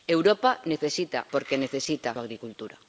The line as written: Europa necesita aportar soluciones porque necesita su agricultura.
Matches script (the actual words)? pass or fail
fail